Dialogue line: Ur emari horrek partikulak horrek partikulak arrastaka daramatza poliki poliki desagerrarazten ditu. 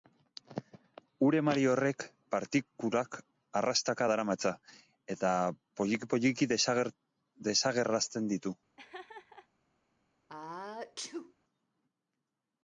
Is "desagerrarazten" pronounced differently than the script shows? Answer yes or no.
no